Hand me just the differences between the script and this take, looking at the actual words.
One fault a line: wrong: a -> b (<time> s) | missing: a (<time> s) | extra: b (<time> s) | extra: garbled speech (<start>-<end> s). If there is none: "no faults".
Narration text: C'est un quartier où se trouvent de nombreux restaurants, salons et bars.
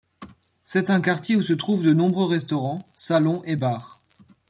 no faults